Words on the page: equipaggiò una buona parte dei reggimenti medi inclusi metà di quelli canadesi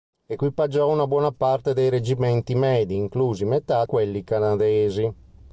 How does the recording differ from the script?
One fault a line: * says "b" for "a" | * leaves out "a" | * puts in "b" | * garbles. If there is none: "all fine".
* leaves out "di"